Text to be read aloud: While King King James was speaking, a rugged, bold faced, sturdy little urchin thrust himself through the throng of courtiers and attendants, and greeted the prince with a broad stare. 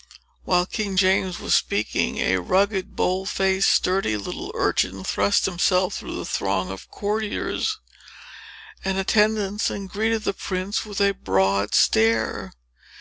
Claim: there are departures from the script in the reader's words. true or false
true